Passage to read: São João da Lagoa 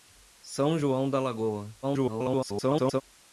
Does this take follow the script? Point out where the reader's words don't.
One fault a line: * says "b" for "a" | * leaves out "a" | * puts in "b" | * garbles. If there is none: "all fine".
* garbles